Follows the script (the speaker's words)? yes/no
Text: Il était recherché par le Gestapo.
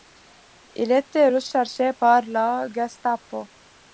no